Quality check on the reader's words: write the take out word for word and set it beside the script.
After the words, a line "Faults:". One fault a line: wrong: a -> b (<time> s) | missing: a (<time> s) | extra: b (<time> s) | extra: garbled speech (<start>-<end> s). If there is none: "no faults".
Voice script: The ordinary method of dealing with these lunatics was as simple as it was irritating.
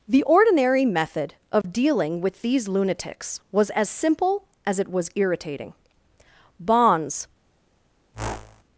The ordinary method of dealing with these lunatics was as simple as it was irritating. Bonds
Faults:
extra: Bonds (6.6 s)